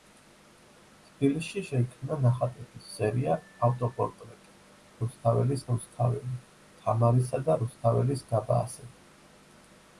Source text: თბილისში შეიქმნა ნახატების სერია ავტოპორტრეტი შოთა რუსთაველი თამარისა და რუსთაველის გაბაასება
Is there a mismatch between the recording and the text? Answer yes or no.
yes